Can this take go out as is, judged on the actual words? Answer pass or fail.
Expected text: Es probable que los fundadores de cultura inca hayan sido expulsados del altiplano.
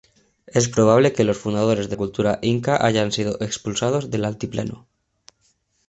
pass